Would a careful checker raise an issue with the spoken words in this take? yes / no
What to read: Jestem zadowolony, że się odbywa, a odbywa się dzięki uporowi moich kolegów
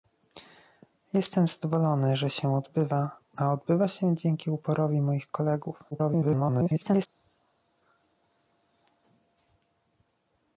yes